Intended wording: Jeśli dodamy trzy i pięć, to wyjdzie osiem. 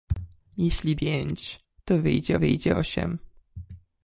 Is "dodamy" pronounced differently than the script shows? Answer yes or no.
yes